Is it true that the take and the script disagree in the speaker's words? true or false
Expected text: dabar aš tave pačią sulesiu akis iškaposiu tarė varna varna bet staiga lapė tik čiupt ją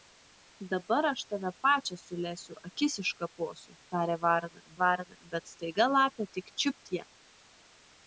false